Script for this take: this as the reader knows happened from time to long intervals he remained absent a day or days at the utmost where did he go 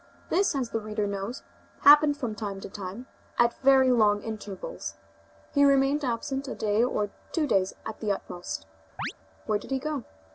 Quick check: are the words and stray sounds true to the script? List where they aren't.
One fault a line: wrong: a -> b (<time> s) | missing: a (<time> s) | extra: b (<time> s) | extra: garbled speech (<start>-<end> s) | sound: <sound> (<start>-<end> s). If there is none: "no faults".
extra: time at very (2.7 s)
extra: two (7.3 s)
sound: chirp (9.0-9.1 s)